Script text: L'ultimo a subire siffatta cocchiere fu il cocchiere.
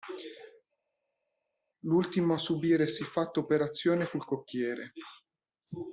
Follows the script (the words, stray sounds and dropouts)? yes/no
no